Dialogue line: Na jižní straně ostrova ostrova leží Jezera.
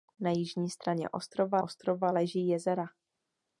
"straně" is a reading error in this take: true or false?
false